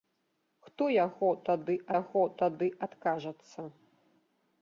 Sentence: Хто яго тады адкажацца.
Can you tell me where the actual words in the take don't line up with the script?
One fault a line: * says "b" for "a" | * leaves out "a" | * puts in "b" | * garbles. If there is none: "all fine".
* puts in "яго тады"